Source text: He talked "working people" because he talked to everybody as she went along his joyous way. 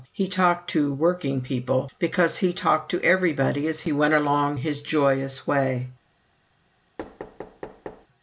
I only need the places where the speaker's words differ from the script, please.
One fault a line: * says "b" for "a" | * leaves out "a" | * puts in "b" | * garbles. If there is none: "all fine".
* puts in "to"
* says "he" for "she"